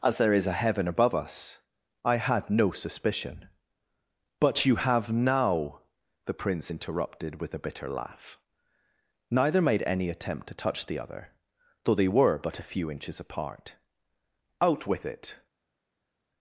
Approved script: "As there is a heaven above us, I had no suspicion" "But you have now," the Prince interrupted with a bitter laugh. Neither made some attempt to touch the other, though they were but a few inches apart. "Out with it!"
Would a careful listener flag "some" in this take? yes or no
yes